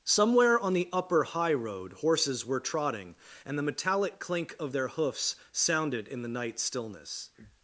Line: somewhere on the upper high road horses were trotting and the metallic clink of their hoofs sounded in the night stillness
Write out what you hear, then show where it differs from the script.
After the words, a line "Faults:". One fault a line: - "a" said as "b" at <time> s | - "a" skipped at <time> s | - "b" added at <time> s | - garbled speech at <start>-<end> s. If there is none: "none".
somewhere on the upper high road horses were trotting and the metallic clink of their hoofs sounded in the night stillness
Faults:
none